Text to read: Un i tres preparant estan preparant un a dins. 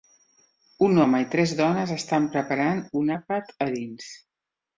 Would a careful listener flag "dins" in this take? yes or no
no